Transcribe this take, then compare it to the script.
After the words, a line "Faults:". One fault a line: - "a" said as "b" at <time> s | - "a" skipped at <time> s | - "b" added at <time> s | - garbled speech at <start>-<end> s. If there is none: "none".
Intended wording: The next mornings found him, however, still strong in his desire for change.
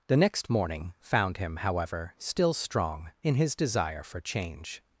The next morning found him, however, still strong in his desire for change.
Faults:
- "mornings" said as "morning" at 0.5 s